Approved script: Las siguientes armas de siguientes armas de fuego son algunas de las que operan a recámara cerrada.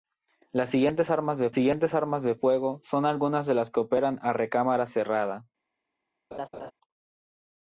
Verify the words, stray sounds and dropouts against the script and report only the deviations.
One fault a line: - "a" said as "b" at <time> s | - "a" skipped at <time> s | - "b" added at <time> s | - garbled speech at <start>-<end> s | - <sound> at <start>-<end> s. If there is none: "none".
- laugh at 6.3-6.7 s